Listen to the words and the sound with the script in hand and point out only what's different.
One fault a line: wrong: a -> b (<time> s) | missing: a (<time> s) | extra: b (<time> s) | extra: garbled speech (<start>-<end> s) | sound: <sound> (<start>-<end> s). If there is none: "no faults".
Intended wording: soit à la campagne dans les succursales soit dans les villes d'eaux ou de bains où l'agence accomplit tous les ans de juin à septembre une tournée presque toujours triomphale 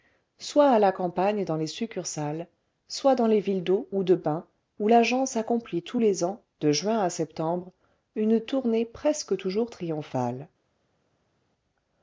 no faults